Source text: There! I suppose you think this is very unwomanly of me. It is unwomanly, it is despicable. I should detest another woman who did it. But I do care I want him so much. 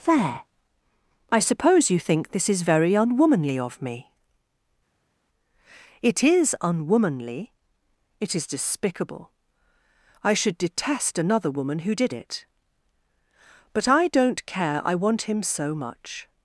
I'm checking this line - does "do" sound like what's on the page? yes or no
no